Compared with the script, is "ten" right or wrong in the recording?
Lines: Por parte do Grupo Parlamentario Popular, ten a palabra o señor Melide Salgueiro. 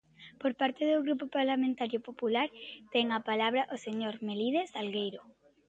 right